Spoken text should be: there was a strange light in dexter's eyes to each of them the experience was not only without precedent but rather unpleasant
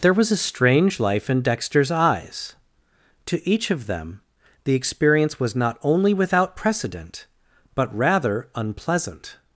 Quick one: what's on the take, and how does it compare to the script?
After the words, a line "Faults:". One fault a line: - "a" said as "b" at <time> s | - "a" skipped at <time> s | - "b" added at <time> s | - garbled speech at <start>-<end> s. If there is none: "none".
there was a strange life in dexter's eyes to each of them the experience was not only without precedent but rather unpleasant
Faults:
- "light" said as "life" at 1.0 s